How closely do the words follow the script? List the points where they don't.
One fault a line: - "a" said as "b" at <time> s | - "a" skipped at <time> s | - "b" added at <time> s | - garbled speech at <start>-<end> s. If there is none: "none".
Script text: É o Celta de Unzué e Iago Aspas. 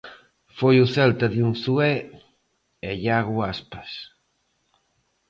- "É" said as "Foi" at 0.6 s